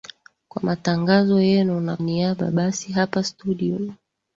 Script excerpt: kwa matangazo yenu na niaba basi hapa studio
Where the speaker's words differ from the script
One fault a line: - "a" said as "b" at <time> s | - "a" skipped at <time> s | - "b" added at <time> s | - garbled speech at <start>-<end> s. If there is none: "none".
none